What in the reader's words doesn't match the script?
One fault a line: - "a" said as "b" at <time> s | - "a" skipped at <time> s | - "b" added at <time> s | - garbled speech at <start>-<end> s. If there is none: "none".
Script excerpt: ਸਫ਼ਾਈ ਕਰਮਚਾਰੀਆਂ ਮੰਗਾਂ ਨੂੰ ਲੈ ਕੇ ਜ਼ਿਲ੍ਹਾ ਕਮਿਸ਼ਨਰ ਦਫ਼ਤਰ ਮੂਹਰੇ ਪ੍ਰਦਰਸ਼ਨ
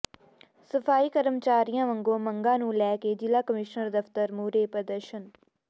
- "ਵੱਲੋਂ" added at 1.9 s